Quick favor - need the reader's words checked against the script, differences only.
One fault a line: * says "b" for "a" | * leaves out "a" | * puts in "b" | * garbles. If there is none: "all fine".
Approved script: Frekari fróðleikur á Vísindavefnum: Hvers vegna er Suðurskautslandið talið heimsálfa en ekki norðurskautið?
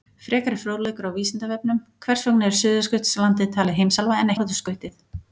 * leaves out "ekki"